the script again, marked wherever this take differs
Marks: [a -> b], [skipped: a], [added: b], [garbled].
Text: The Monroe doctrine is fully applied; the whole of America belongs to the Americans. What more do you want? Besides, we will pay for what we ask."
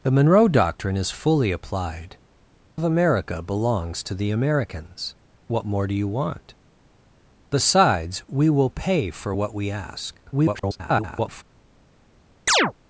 The Monroe doctrine is fully applied; [skipped: the whole] of America belongs to the Americans. What more do you want? Besides, we will pay for what we ask." [garbled]